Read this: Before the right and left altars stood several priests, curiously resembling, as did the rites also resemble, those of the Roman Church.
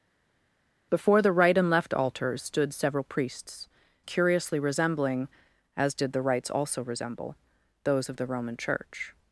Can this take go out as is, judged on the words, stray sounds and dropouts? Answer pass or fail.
pass